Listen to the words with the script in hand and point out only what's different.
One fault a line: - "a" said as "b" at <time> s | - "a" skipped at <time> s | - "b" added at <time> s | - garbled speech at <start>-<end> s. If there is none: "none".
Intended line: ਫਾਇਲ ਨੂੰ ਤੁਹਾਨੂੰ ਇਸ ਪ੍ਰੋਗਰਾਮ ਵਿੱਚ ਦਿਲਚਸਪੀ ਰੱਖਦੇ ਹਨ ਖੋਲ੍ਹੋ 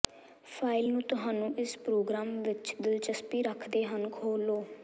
none